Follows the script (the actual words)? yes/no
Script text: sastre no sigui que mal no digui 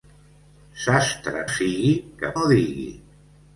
no